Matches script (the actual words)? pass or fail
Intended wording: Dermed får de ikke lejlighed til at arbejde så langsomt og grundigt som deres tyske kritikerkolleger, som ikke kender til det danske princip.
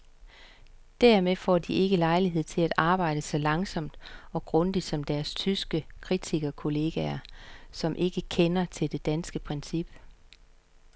pass